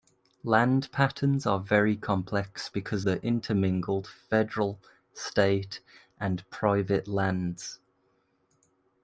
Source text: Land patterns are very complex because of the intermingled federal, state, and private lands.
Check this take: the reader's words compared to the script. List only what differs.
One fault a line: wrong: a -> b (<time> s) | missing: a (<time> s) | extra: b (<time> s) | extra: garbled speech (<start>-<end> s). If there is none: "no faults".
missing: of (3.1 s)